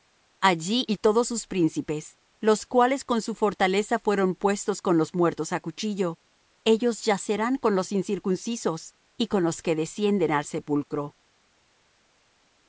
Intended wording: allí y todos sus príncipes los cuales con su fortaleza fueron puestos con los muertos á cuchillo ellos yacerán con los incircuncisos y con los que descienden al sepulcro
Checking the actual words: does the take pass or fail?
pass